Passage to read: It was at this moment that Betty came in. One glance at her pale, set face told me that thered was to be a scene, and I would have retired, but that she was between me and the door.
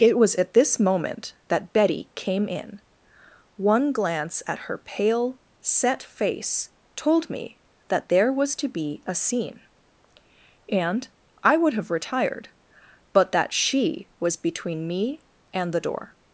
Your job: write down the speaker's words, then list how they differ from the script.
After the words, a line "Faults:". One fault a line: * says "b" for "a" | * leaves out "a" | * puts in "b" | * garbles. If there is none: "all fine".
It was at this moment that Betty came in. One glance at her pale, set face told me that there was to be a scene, and I would have retired, but that she was between me and the door.
Faults:
* says "there" for "thered"